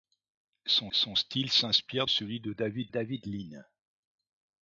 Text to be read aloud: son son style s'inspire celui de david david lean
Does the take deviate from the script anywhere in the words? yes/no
no